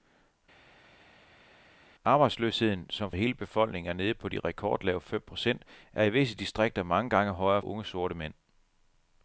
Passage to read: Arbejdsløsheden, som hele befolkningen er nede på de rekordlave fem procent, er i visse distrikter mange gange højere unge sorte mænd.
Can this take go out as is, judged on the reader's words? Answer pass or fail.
pass